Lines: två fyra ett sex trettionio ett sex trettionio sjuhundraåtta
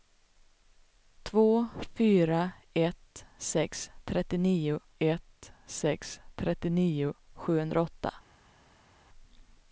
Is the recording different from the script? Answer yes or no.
no